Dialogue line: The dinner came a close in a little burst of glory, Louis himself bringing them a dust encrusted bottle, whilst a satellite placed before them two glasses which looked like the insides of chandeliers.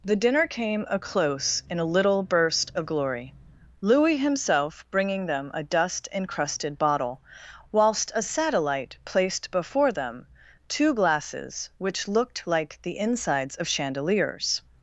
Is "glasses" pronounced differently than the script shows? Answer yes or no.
no